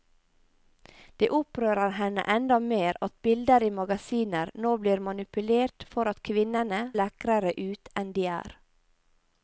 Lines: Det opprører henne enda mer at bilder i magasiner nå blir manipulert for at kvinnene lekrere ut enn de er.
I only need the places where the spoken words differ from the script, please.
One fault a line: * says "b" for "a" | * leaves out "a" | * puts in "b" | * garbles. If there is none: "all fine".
all fine